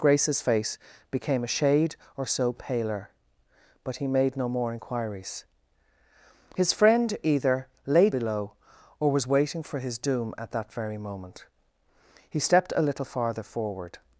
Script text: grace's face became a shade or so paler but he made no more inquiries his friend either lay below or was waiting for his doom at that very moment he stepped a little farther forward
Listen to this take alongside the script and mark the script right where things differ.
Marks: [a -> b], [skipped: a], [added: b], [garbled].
grace's face became a shade or so paler but he made no more inquiries his friend either lay below or was waiting for his doom at that very moment he stepped a little farther forward